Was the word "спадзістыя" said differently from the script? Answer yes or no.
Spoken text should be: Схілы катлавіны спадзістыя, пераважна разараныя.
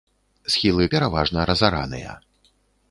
yes